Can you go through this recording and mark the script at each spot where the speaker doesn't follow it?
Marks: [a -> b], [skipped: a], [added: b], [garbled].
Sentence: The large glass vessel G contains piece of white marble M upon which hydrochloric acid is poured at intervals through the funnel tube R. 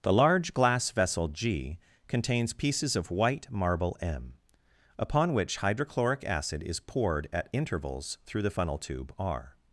The large glass vessel G contains [piece -> pieces] of white marble M upon which hydrochloric acid is poured at intervals through the funnel tube R.